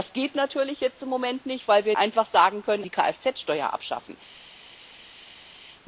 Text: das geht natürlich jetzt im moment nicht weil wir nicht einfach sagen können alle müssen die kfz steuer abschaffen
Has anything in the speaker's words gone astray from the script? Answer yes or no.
yes